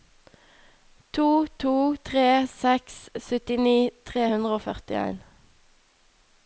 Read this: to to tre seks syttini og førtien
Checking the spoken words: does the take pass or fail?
fail